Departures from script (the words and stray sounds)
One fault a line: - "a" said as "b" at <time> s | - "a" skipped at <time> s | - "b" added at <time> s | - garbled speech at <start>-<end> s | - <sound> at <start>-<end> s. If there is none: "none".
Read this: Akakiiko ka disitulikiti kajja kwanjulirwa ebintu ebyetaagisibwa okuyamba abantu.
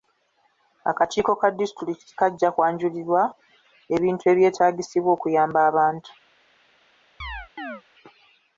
- chirp at 7.2-7.8 s